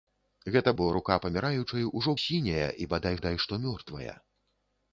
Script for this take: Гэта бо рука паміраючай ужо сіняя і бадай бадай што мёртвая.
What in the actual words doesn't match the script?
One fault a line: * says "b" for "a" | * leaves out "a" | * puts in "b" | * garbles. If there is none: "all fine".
all fine